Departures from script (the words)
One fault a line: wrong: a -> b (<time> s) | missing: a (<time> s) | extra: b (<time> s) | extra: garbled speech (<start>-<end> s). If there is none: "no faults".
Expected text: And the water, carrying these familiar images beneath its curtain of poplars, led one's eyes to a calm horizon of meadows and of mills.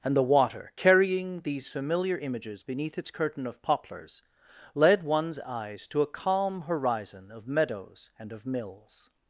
no faults